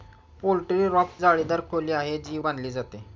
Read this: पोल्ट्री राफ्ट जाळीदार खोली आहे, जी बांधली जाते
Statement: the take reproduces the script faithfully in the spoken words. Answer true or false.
true